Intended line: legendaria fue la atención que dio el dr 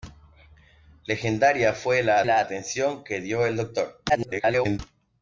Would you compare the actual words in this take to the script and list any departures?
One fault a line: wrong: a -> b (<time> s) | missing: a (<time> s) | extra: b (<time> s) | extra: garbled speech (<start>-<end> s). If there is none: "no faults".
extra: la (2.2 s)
extra: garbled speech (4.1-4.8 s)